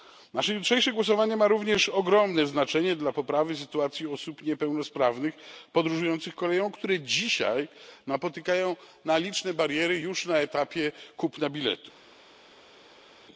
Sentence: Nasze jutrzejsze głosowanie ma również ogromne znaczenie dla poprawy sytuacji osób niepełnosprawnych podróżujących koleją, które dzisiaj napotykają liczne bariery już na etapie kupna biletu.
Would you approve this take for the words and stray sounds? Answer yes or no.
yes